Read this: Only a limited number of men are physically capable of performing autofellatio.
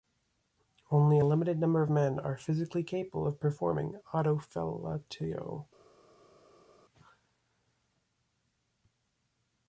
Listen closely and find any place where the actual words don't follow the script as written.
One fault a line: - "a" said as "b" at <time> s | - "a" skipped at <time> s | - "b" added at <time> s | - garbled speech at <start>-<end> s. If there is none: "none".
none